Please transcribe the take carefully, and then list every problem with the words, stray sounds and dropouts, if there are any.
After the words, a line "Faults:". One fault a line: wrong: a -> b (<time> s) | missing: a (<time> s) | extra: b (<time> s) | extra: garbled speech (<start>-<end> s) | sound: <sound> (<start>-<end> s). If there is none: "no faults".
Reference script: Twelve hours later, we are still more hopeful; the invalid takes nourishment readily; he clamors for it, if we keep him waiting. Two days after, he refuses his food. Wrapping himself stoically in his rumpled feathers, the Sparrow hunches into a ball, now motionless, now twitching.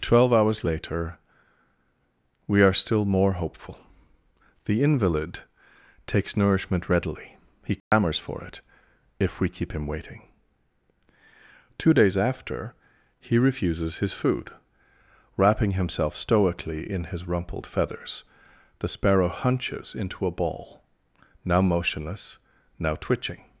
Twelve hours later, we are still more hopeful; the invalid takes nourishment readily; he clamors for it, if we keep him waiting. Two days after, he refuses his food. Wrapping himself stoically in his rumpled feathers, the Sparrow hunches into a ball, now motionless, now twitching.
Faults:
sound: dropout (7.8-7.9 s)